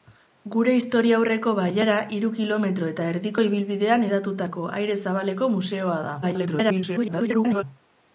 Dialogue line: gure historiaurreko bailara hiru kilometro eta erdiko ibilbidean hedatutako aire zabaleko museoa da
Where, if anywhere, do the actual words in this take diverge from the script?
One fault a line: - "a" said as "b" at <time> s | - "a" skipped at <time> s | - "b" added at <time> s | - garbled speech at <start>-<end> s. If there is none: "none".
- garbled speech at 6.2-7.6 s